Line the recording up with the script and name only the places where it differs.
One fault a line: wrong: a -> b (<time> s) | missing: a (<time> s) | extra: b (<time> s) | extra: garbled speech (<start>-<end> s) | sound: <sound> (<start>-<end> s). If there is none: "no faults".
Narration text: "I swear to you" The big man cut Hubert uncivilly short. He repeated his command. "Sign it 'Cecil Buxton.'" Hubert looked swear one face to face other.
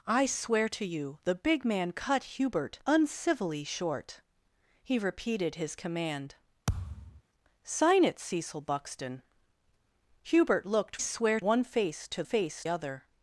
sound: thud (6.7-7.2 s)